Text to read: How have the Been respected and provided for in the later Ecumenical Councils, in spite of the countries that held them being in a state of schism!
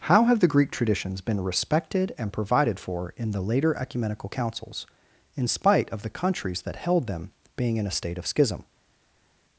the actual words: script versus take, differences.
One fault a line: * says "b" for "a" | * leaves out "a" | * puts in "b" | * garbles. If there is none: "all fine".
* puts in "Greek traditions"